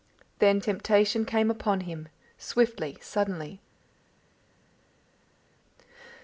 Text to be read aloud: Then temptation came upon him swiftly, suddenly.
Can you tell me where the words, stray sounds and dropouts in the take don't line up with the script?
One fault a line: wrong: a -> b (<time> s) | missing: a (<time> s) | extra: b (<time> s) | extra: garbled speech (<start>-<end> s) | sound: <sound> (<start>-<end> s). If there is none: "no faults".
no faults